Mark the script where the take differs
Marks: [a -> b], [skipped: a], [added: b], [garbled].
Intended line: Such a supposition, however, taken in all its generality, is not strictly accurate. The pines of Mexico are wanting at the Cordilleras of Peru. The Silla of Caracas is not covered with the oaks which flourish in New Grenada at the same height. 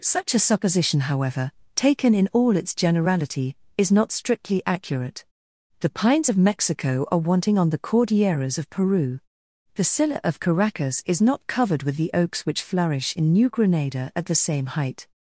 Such a supposition, however, taken in all its generality, is not strictly accurate. The pines of Mexico are wanting [at -> on] the Cordilleras of Peru. The Silla of Caracas is not covered with the oaks which flourish in New Grenada at the same height.